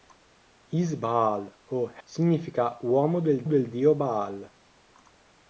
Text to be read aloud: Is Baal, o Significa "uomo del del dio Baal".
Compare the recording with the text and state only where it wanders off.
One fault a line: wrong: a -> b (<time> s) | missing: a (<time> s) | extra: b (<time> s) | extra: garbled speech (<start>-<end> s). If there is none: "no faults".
no faults